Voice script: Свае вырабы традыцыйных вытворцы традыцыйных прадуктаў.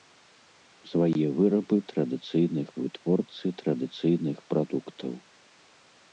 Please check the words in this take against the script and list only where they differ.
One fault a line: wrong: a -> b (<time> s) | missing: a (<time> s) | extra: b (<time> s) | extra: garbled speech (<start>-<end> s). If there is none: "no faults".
no faults